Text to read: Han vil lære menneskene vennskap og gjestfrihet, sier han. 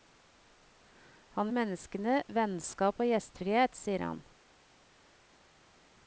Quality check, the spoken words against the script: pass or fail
fail